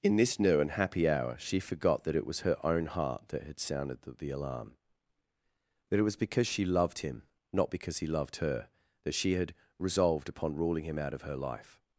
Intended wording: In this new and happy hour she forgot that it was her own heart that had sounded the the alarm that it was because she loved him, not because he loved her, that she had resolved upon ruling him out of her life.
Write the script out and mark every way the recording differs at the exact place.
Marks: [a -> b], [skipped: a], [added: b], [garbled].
In this new and happy hour she forgot that it was her own heart that had sounded the the alarm that it was because she loved him, not because he loved her, that she had resolved upon ruling him out of her life.